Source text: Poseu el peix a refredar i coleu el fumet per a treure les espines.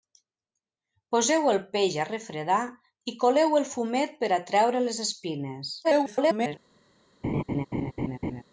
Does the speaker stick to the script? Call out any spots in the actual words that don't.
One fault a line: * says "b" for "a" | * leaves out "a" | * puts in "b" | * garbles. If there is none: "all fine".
* garbles